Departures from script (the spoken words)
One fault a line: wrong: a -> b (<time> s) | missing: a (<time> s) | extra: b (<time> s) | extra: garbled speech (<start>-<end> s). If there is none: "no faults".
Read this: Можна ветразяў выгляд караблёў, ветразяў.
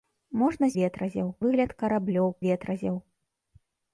no faults